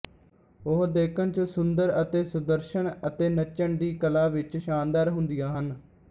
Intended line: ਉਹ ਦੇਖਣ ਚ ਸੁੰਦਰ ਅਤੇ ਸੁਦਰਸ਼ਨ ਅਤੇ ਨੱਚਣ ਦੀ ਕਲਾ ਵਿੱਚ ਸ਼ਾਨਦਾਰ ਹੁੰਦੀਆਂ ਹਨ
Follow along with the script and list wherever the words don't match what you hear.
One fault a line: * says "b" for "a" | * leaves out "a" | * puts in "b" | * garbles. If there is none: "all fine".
all fine